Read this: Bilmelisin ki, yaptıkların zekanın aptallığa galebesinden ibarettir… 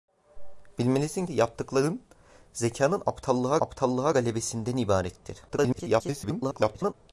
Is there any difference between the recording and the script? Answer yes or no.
yes